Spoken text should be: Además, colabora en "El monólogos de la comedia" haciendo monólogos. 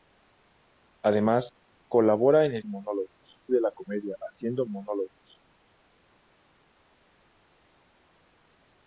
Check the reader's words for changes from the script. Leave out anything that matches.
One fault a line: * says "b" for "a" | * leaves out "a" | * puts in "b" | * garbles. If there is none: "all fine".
all fine